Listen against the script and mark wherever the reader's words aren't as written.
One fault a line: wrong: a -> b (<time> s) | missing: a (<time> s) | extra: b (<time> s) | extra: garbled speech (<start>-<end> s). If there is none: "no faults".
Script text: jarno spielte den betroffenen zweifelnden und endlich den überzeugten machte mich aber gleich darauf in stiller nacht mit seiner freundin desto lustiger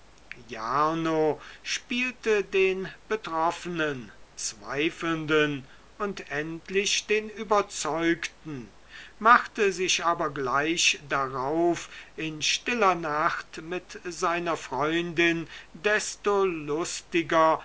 wrong: mich -> sich (9.7 s)